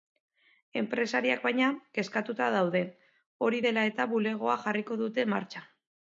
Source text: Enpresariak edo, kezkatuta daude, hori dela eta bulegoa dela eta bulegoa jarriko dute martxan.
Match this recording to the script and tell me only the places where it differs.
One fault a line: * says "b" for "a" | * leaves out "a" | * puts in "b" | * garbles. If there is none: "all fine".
* says "baina" for "edo"
* leaves out "dela eta bulegoa"